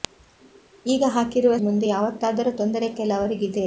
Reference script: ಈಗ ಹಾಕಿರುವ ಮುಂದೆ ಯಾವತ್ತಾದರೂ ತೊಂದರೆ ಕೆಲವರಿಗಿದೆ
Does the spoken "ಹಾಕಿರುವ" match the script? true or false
true